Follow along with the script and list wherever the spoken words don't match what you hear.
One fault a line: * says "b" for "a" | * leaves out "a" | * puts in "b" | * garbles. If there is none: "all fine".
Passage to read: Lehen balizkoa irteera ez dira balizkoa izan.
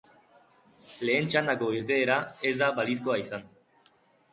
* says "txandako" for "balizkoa"
* says "da" for "dira"